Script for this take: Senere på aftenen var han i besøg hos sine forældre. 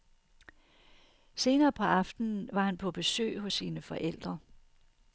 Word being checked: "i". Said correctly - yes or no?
no